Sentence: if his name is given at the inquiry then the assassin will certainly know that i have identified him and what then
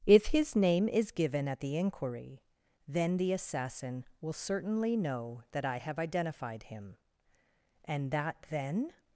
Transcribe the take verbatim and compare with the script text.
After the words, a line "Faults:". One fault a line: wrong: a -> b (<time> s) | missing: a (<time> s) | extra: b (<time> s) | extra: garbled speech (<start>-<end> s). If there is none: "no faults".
if his name is given at the inquiry then the assassin will certainly know that i have identified him and that then
Faults:
wrong: what -> that (8.1 s)